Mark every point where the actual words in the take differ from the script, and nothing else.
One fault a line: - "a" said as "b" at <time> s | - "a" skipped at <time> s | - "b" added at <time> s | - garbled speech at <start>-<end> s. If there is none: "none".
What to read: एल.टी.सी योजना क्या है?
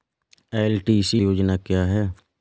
none